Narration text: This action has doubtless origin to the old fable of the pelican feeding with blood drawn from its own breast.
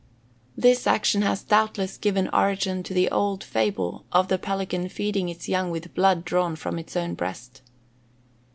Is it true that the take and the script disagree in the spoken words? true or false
true